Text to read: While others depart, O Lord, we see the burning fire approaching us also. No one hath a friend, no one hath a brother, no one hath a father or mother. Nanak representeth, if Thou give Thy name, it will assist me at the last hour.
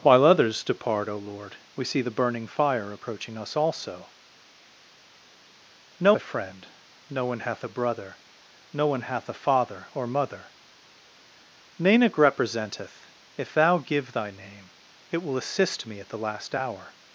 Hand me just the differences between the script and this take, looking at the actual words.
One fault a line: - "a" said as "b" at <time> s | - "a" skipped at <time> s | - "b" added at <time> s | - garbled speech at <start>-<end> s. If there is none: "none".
- "one hath" skipped at 6.1 s